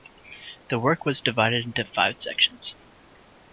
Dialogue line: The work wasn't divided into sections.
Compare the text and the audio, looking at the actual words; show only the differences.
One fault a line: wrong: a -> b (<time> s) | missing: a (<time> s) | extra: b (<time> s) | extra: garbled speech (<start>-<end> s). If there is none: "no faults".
wrong: wasn't -> was (1.1 s)
extra: five (1.9 s)